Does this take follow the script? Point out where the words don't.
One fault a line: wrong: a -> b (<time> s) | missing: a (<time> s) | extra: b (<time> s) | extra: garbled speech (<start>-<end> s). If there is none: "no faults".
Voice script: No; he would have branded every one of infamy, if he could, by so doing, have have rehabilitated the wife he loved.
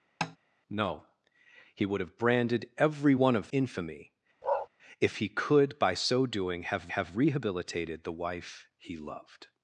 no faults